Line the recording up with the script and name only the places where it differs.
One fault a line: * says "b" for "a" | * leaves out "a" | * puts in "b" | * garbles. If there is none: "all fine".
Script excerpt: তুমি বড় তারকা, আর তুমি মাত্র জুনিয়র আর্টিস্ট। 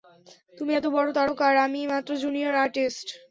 * puts in "এত"
* says "আমি" for "তুমি"